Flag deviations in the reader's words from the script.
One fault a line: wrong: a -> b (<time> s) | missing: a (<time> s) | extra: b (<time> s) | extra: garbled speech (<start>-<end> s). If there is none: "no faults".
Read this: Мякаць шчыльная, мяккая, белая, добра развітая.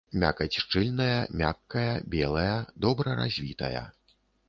no faults